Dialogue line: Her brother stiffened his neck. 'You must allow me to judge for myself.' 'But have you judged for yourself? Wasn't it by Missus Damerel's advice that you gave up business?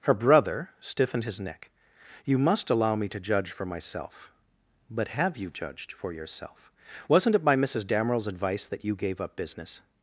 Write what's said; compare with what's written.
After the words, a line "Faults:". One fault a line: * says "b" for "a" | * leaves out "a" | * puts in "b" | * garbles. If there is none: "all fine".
Her brother stiffened his neck. 'You must allow me to judge for myself.' 'But have you judged for yourself? Wasn't it by Missus Damerel's advice that you gave up business?
Faults:
all fine